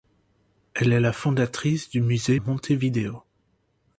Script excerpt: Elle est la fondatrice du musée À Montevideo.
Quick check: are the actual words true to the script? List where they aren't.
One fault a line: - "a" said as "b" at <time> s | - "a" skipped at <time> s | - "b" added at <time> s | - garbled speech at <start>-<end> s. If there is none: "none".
none